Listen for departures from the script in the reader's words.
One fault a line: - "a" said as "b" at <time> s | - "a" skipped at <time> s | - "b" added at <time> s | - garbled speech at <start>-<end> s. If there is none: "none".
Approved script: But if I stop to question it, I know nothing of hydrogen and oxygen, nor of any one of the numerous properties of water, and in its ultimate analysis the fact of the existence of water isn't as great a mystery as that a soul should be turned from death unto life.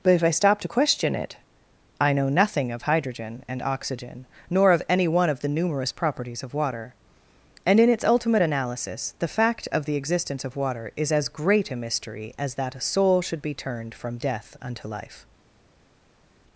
- "isn't" said as "is" at 10.9 s